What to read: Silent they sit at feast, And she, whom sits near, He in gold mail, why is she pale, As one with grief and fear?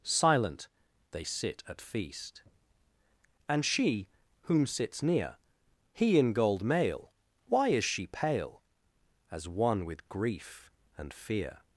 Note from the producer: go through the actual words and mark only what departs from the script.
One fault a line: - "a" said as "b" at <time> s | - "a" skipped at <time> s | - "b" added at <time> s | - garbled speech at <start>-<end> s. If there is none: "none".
none